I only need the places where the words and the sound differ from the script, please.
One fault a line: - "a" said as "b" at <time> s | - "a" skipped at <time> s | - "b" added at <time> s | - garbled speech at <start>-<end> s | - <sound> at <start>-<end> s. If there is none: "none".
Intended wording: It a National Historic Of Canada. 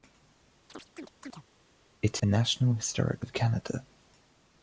- chirp at 0.7-1.4 s